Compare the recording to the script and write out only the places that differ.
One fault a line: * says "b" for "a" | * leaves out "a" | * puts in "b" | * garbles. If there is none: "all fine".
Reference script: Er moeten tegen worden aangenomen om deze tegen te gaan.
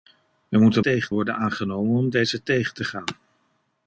all fine